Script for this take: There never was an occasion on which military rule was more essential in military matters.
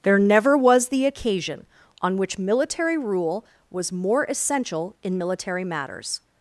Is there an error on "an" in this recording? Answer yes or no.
yes